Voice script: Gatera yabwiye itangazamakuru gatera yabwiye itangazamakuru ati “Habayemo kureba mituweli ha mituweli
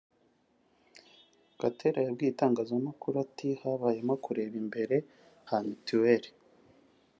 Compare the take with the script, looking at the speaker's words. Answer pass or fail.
fail